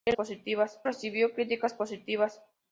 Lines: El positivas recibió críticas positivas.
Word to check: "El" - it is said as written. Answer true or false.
true